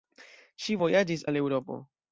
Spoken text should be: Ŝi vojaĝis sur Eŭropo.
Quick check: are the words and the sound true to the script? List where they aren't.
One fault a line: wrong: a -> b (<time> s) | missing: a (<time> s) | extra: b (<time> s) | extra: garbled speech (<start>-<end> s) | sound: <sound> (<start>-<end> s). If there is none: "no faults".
wrong: sur -> al (1.3 s)